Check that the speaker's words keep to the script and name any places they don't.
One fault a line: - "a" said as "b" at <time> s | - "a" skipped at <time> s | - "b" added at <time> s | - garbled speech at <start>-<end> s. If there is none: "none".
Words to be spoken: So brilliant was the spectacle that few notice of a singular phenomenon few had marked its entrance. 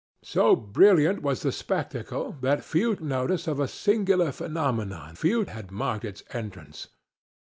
none